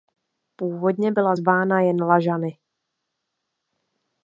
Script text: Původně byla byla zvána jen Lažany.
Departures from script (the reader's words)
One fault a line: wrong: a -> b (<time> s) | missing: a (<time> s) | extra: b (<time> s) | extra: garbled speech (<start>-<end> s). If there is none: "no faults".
missing: byla (1.3 s)